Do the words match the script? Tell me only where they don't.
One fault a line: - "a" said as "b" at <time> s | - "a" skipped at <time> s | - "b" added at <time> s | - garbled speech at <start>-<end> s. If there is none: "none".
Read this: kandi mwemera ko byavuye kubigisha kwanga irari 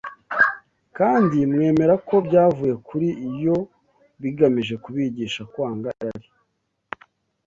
- "kuri yo bigamije" added at 2.9 s